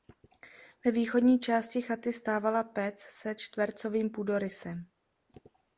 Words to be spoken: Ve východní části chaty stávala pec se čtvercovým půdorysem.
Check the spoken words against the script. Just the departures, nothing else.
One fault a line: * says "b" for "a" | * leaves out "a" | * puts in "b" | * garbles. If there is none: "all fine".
all fine